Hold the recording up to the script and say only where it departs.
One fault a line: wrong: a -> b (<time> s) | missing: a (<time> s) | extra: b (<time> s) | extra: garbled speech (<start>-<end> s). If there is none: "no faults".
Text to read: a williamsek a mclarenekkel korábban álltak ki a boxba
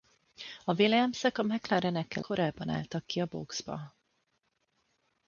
no faults